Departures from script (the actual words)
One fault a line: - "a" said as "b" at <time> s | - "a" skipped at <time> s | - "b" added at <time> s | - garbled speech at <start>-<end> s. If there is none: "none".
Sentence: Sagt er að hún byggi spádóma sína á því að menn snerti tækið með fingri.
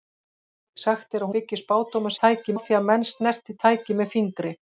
- "hún" skipped at 1.3 s
- "sína" said as "tækið" at 2.2 s